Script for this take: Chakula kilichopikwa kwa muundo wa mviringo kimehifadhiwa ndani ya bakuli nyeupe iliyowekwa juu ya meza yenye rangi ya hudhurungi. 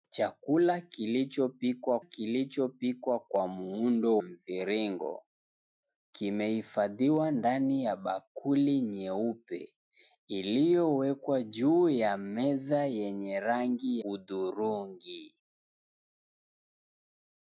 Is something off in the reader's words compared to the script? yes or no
yes